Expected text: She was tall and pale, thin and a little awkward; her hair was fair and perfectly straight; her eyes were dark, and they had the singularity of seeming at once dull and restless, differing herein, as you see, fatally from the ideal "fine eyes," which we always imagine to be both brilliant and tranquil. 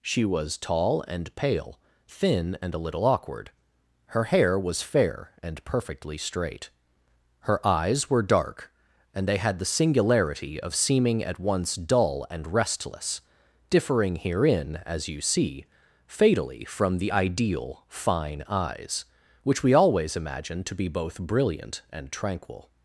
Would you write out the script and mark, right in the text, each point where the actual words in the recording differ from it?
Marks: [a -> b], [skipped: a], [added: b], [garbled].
She was tall and pale, thin and a little awkward; her hair was fair and perfectly straight; her eyes were dark, and they had the singularity of seeming at once dull and restless, differing herein, as you see, fatally from the ideal "fine eyes," which we always imagine to be both brilliant and tranquil.